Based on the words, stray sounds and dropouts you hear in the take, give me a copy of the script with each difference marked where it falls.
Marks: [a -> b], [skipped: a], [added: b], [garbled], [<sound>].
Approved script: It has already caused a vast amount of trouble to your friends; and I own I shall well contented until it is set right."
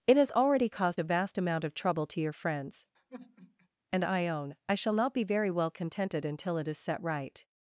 It has already caused a vast amount of trouble to your friends; [sigh] and I own I shall [added: not be very] well contented until it is set right."